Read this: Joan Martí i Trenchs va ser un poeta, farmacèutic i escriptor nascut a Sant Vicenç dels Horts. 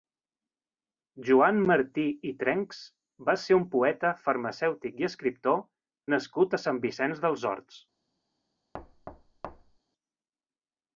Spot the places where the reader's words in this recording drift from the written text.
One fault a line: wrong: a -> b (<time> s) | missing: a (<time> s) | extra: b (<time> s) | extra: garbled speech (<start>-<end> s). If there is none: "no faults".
no faults